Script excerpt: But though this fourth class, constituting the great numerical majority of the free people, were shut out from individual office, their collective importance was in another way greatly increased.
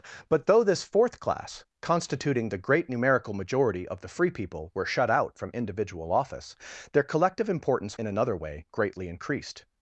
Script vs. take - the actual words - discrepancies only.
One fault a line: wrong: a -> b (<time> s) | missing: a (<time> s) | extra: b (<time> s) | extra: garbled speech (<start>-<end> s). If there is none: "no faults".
missing: was (8.0 s)